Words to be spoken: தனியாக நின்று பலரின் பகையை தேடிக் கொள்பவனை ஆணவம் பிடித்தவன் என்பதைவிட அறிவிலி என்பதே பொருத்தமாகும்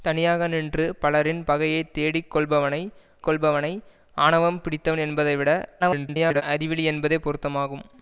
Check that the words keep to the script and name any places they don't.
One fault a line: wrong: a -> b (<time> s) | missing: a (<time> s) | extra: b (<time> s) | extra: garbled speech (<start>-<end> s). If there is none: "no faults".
extra: கொள்பவனை (3.2 s)
extra: garbled speech (5.8-6.4 s)